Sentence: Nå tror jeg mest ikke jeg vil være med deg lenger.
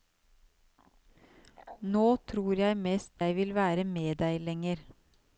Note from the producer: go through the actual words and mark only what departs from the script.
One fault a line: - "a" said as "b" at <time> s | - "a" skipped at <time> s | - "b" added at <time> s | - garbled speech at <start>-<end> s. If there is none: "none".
- "ikke" skipped at 3.2 s